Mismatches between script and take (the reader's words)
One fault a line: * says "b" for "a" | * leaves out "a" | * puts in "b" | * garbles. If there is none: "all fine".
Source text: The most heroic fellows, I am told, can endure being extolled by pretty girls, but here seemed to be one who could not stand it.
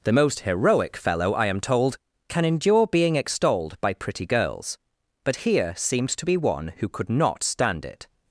* says "fellow" for "fellows"